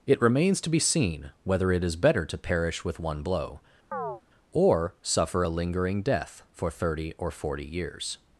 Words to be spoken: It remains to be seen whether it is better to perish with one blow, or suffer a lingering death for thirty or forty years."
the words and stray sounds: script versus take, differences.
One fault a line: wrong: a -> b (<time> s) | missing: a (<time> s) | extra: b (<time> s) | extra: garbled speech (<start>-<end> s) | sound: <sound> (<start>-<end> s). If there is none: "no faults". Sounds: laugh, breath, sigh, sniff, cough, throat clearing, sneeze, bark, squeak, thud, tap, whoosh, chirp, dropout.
sound: chirp (3.9-4.2 s)